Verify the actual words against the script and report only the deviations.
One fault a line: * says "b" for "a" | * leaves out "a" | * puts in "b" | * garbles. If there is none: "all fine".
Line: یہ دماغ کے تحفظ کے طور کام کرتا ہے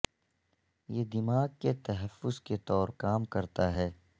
all fine